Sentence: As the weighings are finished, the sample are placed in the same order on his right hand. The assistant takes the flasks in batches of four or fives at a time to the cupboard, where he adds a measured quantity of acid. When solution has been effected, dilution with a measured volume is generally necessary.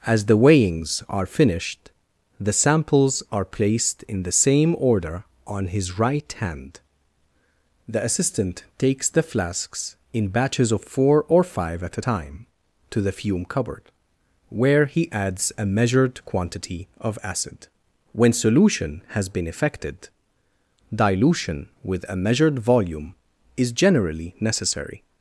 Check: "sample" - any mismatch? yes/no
yes